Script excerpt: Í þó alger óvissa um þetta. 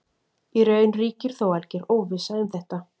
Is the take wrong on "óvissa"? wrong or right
right